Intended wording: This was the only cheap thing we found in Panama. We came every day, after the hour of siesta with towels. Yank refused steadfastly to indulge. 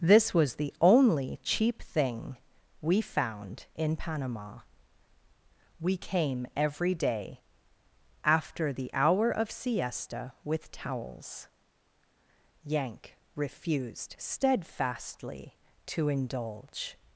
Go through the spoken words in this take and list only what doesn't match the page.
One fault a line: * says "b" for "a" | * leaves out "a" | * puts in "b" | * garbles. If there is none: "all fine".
all fine